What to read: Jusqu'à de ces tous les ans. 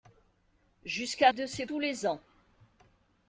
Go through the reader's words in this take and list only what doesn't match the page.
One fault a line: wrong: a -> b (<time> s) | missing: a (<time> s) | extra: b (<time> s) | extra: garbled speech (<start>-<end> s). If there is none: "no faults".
no faults